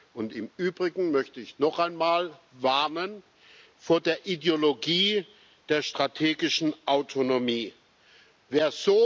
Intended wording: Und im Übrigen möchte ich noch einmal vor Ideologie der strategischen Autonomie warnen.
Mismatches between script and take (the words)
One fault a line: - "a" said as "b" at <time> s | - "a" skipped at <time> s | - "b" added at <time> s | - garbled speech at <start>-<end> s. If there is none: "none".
- "der" added at 4.0 s